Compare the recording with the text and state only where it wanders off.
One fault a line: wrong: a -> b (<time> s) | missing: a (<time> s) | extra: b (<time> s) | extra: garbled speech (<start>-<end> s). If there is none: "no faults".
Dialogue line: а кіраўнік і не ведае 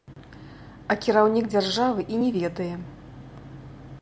extra: дзяржавы (1.5 s)